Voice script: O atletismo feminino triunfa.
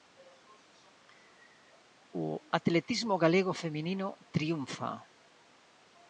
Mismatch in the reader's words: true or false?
true